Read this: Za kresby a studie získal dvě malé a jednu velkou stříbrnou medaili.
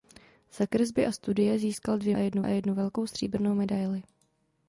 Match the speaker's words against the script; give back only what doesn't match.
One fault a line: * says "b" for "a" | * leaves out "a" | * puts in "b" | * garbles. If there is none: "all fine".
* says "jednu" for "malé"